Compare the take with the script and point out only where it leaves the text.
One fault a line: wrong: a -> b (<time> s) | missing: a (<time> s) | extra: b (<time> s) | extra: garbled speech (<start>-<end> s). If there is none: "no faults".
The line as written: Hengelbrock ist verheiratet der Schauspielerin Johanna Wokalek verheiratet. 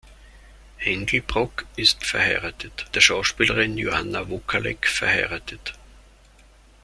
no faults